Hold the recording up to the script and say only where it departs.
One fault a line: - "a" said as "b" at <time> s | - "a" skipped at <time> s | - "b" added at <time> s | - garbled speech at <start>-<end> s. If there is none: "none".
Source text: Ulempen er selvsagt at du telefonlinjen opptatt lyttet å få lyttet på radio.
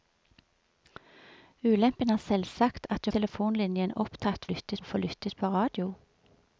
none